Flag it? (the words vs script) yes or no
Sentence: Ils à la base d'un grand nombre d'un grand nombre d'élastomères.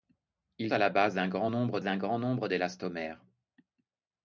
no